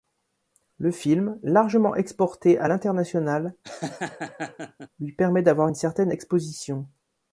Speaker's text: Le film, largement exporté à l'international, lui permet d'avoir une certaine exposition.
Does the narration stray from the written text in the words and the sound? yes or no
yes